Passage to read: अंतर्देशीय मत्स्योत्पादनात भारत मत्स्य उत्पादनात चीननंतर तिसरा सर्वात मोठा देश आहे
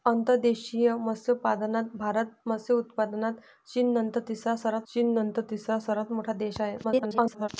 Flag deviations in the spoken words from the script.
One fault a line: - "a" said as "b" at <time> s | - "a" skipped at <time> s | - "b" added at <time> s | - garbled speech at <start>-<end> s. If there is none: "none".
- "चीननंतर तिसरा सर्वात" added at 4.9 s
- garbled speech at 6.8-7.5 s